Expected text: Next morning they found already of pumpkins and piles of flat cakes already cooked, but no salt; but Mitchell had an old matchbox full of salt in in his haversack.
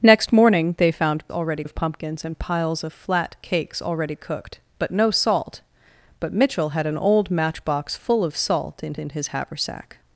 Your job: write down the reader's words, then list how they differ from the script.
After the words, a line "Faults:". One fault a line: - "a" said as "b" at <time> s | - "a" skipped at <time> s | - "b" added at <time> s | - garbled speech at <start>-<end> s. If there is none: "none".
Next morning they found already of pumpkins and piles of flat cakes already cooked, but no salt; but Mitchell had an old matchbox full of salt in in his haversack.
Faults:
none